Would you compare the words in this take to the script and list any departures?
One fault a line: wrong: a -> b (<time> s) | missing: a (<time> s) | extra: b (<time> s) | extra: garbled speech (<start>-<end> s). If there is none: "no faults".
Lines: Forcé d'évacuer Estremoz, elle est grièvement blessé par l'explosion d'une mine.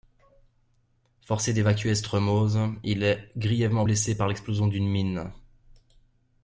wrong: elle -> il (2.8 s)